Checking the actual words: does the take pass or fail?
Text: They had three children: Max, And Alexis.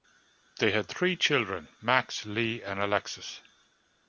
fail